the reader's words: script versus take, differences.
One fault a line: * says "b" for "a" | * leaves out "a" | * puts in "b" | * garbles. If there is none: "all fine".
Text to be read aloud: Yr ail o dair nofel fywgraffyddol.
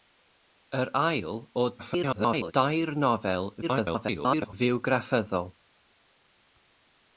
* garbles
* garbles